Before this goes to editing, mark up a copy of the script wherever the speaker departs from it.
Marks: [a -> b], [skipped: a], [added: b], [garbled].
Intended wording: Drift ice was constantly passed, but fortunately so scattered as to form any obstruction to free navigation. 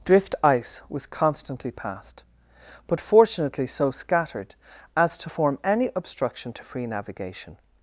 Drift ice was constantly passed, but fortunately so scattered as to form any obstruction to free navigation.